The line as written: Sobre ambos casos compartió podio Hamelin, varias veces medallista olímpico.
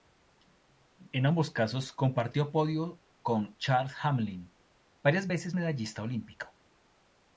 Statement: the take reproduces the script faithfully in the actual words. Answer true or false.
false